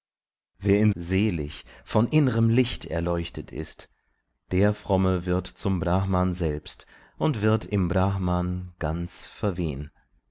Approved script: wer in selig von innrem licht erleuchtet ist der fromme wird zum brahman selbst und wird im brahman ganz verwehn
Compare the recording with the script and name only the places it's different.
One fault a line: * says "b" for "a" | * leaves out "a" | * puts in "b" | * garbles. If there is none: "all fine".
all fine